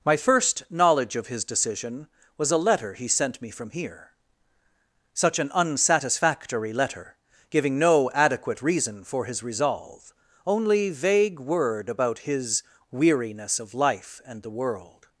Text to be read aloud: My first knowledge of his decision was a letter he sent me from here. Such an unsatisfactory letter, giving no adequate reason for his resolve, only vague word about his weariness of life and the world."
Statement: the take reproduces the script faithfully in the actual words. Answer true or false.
true